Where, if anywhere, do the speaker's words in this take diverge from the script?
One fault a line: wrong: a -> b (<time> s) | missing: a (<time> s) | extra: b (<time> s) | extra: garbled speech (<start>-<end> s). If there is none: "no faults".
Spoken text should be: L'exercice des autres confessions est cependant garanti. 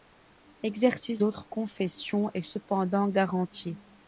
missing: des (1.2 s)